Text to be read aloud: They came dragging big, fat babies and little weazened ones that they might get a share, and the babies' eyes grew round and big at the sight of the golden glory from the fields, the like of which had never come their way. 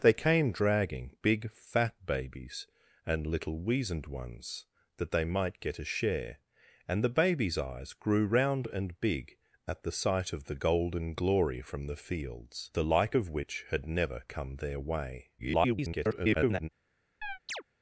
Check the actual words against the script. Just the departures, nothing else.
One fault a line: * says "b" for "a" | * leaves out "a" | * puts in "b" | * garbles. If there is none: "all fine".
* garbles